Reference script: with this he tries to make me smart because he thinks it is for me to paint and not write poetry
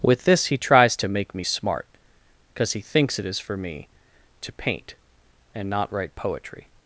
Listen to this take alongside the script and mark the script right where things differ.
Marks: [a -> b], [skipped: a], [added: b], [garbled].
with this he tries to make me smart because he thinks it is for me to paint and not write poetry